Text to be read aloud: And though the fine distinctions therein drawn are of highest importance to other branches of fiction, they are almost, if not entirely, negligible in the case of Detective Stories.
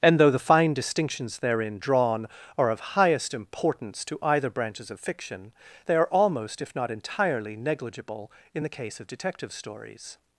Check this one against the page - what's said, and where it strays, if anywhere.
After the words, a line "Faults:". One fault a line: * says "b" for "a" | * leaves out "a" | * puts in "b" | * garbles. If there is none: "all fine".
And though the fine distinctions therein drawn are of highest importance to either branches of fiction, they are almost, if not entirely, negligible in the case of Detective Stories.
Faults:
* says "either" for "other"